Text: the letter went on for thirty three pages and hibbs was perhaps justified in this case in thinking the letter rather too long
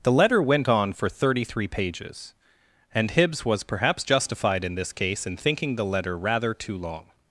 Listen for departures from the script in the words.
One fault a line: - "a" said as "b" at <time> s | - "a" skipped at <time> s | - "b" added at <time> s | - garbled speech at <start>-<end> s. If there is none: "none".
none